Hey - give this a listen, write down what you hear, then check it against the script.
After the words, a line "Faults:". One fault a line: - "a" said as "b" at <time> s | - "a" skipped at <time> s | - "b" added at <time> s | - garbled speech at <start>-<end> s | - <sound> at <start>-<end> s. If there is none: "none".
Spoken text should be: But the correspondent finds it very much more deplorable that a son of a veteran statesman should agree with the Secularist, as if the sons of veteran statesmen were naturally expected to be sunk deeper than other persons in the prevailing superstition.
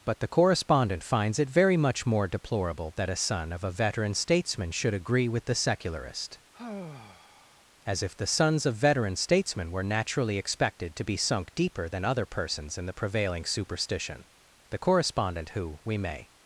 But the correspondent finds it very much more deplorable that a son of a veteran statesman should agree with the Secularist, as if the sons of veteran statesmen were naturally expected to be sunk deeper than other persons in the prevailing superstition. The correspondent who, we may
Faults:
- sigh at 6.5-7.6 s
- "The correspondent who we may" added at 14.7 s